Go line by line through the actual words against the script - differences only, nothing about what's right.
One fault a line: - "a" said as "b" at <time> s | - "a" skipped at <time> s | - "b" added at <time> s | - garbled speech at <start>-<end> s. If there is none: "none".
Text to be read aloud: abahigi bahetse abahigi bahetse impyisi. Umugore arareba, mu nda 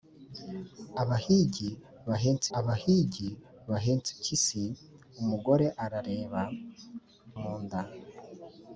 none